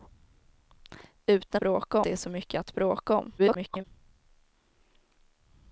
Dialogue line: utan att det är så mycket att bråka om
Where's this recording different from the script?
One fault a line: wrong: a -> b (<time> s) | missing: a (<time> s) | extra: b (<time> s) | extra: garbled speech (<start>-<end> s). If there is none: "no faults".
wrong: att -> bråka (1.6 s)
extra: garbled speech (3.4-3.8 s)